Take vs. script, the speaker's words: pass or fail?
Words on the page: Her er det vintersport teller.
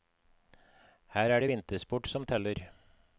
fail